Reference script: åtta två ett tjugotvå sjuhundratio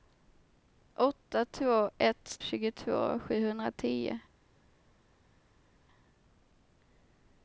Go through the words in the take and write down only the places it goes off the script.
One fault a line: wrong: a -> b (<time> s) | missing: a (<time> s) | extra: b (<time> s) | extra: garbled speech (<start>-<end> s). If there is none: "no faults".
no faults